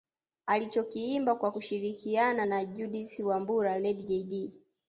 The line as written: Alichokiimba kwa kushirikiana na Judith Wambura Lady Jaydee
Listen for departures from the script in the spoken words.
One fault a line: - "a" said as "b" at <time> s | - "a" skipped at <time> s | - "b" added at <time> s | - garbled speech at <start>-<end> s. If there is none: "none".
none